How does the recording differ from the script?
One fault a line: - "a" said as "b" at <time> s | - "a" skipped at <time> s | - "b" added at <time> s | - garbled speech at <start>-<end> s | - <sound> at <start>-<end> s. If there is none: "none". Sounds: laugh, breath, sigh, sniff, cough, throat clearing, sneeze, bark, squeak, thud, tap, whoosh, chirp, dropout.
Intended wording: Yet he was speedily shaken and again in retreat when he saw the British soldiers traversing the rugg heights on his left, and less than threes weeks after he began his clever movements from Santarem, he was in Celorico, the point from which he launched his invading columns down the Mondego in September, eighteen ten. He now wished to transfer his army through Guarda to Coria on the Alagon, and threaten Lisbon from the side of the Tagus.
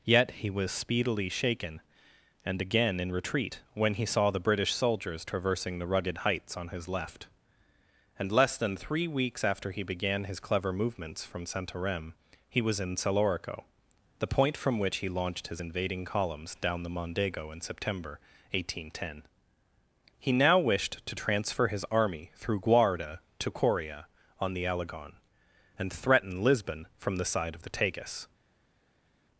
- "rugg" said as "rugged" at 5.8 s
- "threes" said as "three" at 8.8 s